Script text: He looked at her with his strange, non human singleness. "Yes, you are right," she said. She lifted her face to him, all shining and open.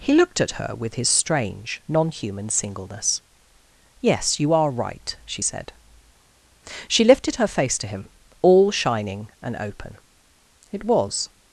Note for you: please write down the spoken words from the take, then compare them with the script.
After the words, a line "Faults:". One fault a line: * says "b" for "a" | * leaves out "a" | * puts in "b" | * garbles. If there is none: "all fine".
He looked at her with his strange, non human singleness. "Yes, you are right," she said. She lifted her face to him, all shining and open. It was
Faults:
* puts in "It was"